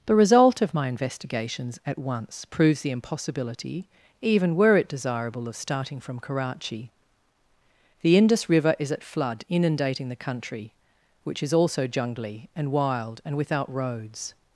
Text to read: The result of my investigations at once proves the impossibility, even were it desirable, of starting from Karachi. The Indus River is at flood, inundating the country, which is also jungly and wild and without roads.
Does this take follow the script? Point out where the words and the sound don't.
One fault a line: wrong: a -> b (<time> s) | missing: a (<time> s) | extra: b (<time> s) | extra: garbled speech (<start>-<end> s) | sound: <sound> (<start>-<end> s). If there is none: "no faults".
no faults